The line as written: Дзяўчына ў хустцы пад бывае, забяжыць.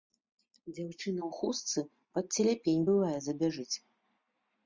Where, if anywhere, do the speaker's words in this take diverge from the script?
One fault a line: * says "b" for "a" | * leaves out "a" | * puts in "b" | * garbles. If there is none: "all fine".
* puts in "целяпень"